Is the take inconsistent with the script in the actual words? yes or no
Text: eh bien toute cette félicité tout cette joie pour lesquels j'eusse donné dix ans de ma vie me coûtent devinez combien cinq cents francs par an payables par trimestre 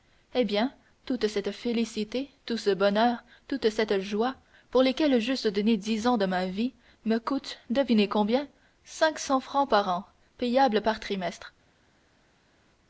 yes